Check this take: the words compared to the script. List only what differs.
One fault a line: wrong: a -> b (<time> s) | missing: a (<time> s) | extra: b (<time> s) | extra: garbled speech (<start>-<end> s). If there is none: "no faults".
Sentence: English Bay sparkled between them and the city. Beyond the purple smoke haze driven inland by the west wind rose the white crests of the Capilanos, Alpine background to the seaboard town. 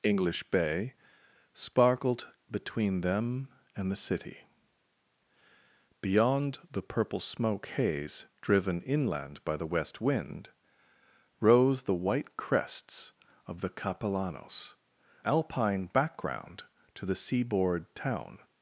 no faults